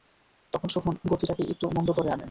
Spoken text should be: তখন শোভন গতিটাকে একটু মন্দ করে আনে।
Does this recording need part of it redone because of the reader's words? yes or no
no